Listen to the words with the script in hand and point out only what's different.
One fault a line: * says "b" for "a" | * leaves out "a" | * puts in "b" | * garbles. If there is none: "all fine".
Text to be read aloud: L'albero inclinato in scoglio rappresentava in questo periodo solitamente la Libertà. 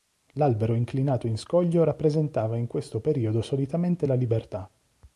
all fine